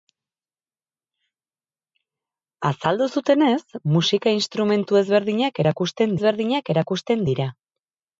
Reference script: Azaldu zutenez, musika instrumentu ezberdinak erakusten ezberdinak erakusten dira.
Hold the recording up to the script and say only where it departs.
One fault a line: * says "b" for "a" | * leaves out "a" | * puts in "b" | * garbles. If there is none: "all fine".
all fine